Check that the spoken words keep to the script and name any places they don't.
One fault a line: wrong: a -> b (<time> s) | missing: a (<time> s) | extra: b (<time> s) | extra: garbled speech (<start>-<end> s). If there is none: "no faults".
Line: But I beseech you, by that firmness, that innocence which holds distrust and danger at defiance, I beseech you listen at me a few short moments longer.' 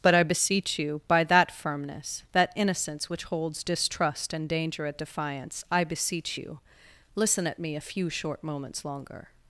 no faults